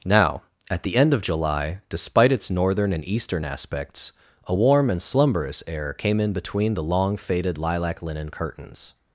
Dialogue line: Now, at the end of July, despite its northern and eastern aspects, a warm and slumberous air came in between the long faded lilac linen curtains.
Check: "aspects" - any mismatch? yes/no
no